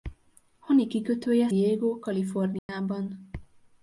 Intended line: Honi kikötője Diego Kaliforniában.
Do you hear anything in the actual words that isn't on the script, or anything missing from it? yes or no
no